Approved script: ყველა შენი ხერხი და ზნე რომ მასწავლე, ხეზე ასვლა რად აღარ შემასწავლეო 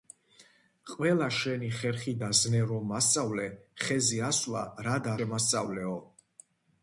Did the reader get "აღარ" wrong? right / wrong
wrong